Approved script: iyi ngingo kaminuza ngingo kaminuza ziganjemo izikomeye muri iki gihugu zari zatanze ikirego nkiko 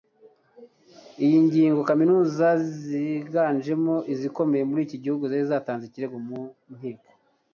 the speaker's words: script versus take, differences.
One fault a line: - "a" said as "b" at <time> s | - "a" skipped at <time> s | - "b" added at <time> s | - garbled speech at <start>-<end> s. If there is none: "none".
- "ngingo kaminuza" skipped at 2.5 s
- "mu" added at 6.3 s